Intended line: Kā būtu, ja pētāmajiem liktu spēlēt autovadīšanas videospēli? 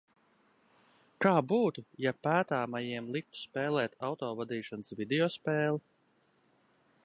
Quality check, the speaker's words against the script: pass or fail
pass